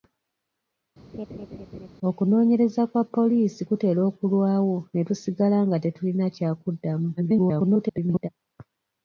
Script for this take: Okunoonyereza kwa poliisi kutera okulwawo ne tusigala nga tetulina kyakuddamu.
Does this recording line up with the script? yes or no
no